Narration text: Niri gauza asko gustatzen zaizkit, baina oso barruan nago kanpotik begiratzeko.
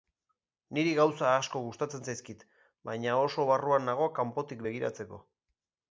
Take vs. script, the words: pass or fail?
pass